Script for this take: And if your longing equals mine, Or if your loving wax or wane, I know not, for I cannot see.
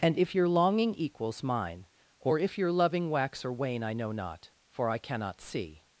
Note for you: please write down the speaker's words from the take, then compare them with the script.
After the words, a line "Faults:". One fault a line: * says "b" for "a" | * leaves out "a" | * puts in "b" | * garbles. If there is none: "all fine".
And if your longing equals mine, Or if your loving wax or wane, I know not, for I cannot see.
Faults:
all fine